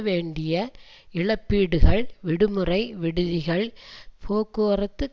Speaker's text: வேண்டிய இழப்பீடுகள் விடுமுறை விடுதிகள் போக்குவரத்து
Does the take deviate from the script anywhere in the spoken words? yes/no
no